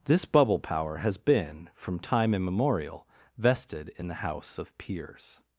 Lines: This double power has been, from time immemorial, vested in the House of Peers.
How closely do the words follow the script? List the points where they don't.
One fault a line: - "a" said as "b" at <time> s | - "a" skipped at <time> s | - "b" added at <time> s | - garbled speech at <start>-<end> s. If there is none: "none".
- "double" said as "bubble" at 0.2 s